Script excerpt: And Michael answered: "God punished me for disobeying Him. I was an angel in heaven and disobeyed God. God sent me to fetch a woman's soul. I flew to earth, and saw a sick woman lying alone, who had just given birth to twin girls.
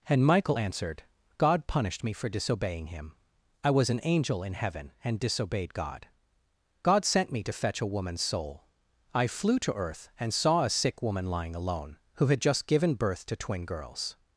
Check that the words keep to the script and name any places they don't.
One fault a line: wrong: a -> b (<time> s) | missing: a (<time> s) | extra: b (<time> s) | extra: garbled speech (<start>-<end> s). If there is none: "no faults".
no faults